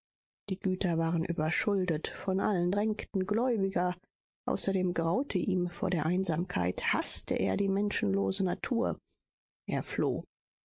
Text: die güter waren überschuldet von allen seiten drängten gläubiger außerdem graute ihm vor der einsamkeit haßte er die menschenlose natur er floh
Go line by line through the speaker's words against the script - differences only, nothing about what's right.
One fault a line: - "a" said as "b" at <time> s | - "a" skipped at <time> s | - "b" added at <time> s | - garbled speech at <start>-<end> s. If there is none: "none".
- "seiten" skipped at 2.7 s